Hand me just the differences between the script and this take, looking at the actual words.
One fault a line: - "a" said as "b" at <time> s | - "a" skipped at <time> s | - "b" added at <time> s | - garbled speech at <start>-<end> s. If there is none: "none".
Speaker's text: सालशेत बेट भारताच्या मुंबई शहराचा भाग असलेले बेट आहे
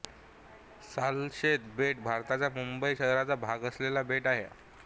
none